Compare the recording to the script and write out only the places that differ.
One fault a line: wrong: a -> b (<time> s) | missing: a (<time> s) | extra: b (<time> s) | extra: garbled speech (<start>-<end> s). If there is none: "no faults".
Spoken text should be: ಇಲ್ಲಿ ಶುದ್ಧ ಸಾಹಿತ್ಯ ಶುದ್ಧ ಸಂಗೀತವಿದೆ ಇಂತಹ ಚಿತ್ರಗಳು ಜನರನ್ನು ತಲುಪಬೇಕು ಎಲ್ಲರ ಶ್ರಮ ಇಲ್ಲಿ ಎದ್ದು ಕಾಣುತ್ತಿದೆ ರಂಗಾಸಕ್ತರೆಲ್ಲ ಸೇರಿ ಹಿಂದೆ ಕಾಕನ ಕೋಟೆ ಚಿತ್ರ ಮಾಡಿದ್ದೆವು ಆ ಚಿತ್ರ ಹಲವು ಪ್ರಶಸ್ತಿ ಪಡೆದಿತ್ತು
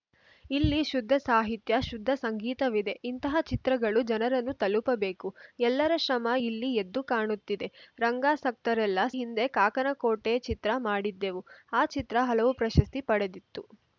missing: ಸೇರಿ (9.1 s)